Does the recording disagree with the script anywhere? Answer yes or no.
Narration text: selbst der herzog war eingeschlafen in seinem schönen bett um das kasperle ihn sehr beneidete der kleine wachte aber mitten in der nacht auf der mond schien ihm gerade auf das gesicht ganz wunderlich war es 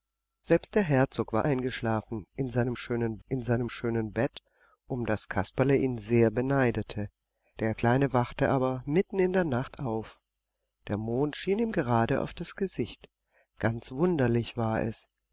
yes